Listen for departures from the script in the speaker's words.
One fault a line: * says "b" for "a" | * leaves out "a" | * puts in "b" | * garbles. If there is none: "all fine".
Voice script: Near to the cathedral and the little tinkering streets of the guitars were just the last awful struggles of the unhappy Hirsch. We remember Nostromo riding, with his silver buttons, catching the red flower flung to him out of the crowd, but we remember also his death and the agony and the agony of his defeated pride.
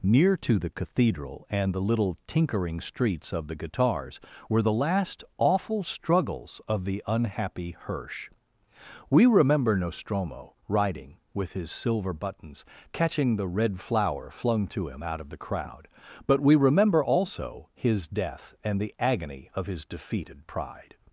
* leaves out "just"
* leaves out "and the agony"